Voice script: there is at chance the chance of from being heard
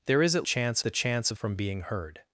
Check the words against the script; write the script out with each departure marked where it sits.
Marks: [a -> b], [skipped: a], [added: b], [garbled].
there is at chance the chance of from being heard